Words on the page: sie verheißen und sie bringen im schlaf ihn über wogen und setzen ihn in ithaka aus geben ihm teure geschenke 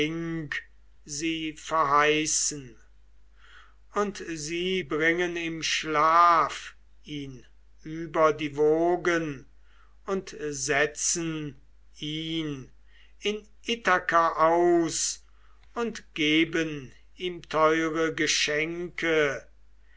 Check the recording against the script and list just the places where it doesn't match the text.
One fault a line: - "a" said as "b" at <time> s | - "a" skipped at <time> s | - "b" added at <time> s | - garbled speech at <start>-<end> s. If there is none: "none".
- "die" added at 8.3 s
- "und" added at 15.7 s